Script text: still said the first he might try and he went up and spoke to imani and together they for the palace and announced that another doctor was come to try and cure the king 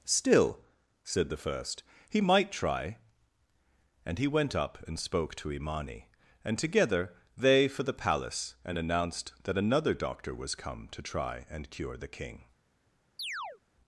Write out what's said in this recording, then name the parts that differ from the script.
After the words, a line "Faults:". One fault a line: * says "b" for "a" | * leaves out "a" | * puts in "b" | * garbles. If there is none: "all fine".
still said the first he might try and he went up and spoke to imani and together they for the palace and announced that another doctor was come to try and cure the king
Faults:
all fine